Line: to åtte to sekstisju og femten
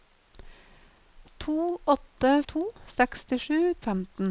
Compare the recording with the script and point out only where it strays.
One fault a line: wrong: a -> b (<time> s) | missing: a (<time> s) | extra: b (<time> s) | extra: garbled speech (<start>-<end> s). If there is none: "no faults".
no faults